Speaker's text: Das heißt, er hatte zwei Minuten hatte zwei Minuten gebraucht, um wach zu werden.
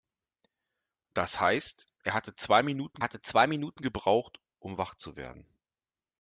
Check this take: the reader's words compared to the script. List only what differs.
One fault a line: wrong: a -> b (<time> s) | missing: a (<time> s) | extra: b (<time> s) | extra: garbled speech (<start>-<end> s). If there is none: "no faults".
no faults